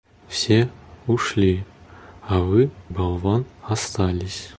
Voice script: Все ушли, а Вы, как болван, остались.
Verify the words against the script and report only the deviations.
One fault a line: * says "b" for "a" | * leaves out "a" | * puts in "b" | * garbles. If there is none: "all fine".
* leaves out "как"